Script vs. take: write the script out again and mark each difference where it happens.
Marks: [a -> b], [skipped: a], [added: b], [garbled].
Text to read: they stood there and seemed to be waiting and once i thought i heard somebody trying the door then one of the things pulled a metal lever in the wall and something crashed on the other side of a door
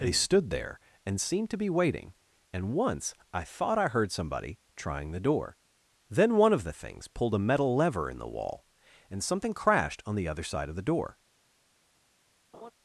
they stood there and seemed to be waiting and once i thought i heard somebody trying the door then one of the things pulled a metal lever in the wall and something crashed on the other side of [a -> the] door